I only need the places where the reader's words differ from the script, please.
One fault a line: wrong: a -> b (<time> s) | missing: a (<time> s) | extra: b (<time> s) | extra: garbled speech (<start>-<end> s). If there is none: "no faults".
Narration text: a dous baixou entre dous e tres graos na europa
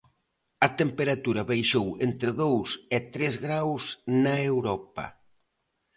wrong: dous -> temperatura (0.8 s)